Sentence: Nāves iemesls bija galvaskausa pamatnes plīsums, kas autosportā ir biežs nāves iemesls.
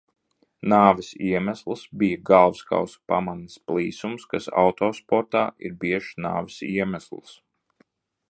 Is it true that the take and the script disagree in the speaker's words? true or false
false